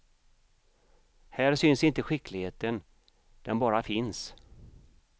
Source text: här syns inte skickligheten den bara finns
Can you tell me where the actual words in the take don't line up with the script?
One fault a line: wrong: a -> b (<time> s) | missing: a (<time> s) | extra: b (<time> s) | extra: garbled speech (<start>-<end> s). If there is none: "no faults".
no faults